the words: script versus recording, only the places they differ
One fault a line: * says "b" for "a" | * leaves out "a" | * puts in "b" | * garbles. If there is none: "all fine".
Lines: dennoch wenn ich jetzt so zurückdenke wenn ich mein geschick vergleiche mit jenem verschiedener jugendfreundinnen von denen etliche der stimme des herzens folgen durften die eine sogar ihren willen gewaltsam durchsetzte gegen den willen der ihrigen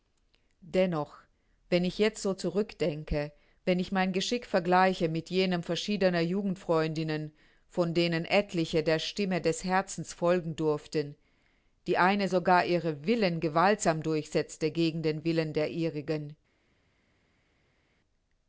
all fine